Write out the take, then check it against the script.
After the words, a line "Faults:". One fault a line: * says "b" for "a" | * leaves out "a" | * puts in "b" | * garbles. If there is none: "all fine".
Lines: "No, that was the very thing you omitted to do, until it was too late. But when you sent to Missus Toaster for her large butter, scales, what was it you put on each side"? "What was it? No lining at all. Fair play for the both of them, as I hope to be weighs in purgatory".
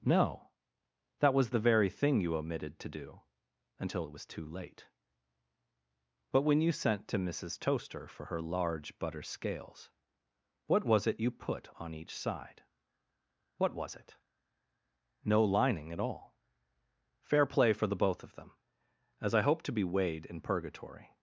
"No, that was the very thing you omitted to do, until it was too late. But when you sent to Missus Toaster for her large butter, scales, what was it you put on each side"? "What was it? No lining at all. Fair play for the both of them, as I hope to be weighed in purgatory".
Faults:
* says "weighed" for "weighs"